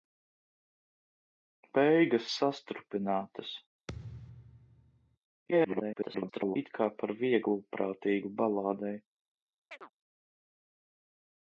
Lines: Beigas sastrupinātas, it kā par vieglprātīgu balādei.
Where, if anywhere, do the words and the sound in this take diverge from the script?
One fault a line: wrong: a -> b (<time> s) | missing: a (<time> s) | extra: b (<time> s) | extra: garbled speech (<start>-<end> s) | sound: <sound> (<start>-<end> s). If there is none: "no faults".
sound: thud (3.9-5.2 s)
extra: garbled speech (5.5-6.6 s)
sound: chirp (9.7-9.9 s)